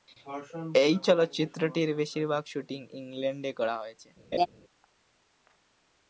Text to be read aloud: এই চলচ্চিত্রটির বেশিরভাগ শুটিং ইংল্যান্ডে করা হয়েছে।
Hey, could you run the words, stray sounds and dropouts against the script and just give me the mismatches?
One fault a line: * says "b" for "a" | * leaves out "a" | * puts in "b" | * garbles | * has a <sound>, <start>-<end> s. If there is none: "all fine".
* has a laugh, 4.3-4.5 s